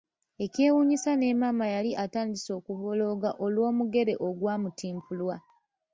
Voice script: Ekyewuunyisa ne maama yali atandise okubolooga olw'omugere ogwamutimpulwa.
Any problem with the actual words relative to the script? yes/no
no